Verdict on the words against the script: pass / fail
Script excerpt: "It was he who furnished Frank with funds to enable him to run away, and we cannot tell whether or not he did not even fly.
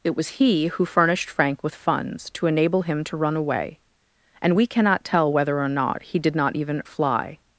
pass